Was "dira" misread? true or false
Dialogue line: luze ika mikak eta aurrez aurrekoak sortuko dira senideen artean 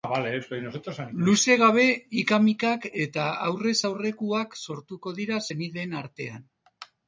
false